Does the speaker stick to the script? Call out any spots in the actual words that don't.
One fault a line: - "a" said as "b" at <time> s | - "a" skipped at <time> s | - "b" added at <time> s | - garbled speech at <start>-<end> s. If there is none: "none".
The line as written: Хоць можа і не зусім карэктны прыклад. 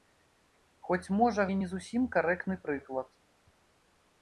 none